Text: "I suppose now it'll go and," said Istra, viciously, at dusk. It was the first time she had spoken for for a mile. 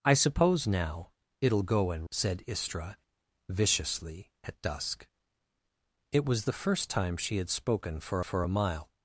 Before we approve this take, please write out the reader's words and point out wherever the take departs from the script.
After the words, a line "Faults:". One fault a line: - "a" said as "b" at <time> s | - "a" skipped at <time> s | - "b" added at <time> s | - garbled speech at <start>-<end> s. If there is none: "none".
"I suppose now it'll go and," said Istra, viciously, at dusk. It was the first time she had spoken for for a mile.
Faults:
none